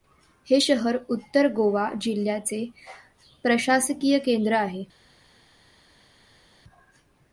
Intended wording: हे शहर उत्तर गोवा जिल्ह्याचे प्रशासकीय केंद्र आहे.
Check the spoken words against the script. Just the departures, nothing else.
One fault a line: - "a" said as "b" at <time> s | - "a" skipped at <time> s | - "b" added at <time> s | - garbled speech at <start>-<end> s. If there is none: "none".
none